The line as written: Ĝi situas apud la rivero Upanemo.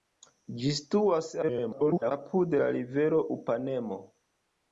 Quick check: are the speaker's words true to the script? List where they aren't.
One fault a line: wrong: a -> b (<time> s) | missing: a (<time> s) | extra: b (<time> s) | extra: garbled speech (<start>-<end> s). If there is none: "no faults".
extra: garbled speech (1.4-2.1 s)